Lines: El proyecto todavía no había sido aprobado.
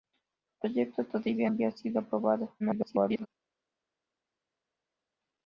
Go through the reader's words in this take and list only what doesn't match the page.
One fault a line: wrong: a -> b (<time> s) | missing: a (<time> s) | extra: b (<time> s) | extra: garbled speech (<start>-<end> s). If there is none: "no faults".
missing: no (1.5 s)
extra: garbled speech (2.6-3.3 s)